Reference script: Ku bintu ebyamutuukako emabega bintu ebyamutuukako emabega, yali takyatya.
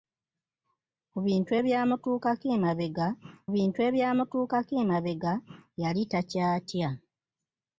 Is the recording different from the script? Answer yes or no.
no